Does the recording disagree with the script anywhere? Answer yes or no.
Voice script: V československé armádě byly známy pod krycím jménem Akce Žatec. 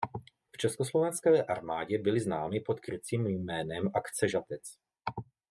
no